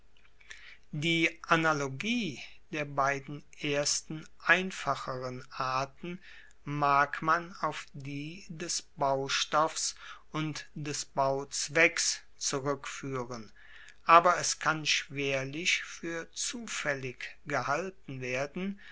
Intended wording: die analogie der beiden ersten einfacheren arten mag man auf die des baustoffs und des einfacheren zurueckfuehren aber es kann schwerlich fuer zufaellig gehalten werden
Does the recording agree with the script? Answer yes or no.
no